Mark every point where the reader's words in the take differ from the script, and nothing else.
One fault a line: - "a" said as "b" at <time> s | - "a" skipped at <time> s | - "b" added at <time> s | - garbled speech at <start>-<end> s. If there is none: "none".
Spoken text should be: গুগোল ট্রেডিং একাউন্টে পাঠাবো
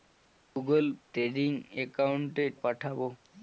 none